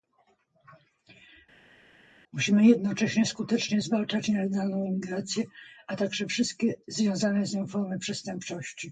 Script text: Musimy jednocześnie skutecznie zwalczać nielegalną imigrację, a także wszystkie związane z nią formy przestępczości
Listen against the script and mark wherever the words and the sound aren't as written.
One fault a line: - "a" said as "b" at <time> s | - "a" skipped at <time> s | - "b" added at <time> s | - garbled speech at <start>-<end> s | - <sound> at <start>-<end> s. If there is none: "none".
none